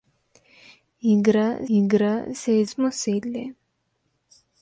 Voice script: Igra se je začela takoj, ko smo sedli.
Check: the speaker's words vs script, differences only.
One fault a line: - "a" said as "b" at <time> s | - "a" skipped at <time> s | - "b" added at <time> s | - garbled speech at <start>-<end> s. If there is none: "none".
- "igra" added at 1.8 s
- "začela takoj ko" skipped at 2.7 s